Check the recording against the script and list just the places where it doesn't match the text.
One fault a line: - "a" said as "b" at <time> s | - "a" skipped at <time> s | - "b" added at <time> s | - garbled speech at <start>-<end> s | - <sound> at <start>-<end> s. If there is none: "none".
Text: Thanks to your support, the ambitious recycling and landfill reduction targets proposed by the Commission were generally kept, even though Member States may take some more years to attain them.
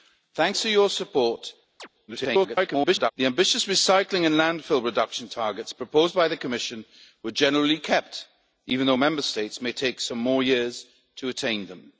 - chirp at 1.8-1.9 s
- garbled speech at 2.1-3.1 s